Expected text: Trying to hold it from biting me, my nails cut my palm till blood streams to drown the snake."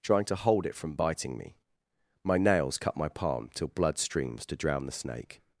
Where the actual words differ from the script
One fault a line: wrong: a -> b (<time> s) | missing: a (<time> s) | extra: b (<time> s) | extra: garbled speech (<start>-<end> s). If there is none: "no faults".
no faults